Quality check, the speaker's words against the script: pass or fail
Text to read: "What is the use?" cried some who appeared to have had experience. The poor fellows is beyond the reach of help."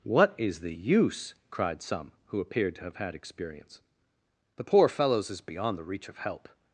pass